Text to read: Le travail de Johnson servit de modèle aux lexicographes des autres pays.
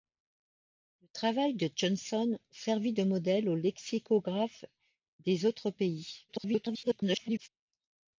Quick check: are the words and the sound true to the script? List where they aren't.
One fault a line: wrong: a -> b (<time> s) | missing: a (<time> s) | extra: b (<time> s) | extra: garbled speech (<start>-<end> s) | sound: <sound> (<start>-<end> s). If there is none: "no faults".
extra: garbled speech (6.3-7.5 s)